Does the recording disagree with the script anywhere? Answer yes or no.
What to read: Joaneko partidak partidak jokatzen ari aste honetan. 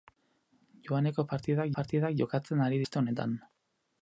no